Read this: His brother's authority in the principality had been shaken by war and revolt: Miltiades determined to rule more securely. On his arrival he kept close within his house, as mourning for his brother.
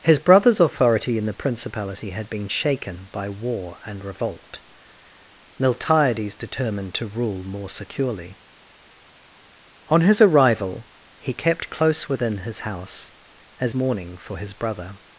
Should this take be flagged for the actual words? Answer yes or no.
no